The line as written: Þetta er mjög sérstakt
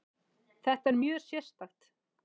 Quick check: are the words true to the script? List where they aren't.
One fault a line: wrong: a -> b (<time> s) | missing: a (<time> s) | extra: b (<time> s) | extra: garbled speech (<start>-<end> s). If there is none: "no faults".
no faults